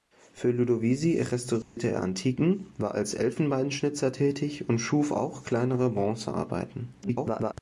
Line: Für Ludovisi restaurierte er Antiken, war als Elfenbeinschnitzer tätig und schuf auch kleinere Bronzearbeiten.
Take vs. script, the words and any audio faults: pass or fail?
fail